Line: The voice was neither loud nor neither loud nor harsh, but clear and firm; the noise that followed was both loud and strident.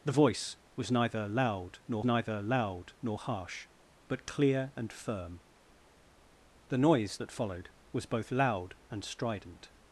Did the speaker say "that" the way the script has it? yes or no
yes